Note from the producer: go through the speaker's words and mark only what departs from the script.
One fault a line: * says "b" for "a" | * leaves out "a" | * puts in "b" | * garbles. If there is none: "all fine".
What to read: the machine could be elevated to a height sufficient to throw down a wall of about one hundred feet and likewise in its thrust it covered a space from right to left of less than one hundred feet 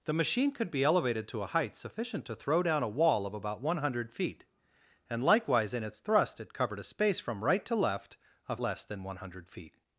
all fine